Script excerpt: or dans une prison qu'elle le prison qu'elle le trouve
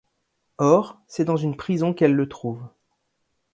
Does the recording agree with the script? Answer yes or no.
no